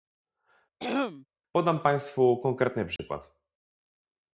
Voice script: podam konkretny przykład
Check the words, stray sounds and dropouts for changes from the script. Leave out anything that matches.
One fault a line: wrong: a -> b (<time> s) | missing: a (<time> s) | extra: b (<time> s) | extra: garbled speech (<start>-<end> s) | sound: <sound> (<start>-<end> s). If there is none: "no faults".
sound: throat clearing (0.8-1.3 s)
extra: państwu (1.8 s)
sound: dropout (3.0-3.0 s)